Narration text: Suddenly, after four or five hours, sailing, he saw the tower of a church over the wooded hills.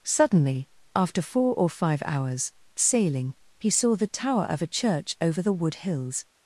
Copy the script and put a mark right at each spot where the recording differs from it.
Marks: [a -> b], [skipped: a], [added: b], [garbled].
Suddenly, after four or five hours, sailing, he saw the tower of a church over the [wooded -> wood] hills.